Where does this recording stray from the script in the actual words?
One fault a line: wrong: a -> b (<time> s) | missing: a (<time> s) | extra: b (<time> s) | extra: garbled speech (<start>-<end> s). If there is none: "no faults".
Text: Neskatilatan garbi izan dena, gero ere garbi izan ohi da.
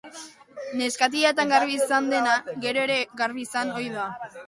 no faults